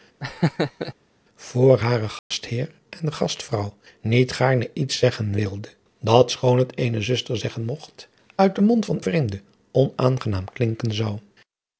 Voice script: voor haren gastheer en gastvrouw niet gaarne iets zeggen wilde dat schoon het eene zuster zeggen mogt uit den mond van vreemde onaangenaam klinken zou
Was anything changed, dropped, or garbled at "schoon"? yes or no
no